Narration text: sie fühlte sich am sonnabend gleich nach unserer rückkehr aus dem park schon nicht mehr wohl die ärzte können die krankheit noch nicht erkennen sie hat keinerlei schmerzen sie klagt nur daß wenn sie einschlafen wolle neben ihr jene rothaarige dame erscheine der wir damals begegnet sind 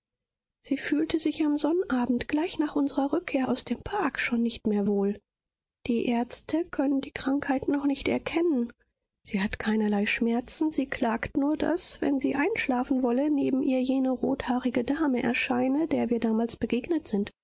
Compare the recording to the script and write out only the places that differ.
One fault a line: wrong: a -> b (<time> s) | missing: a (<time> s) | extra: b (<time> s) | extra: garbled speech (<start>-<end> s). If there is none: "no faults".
no faults